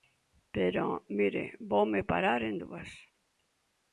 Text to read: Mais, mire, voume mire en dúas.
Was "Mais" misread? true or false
true